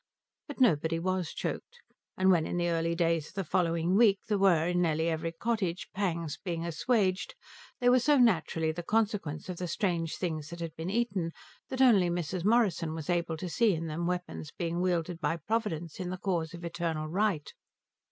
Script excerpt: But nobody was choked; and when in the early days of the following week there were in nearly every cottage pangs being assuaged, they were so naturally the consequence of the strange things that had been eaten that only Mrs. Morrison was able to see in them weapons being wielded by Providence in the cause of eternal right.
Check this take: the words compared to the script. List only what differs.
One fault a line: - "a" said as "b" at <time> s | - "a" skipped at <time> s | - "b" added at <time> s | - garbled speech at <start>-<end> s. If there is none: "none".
none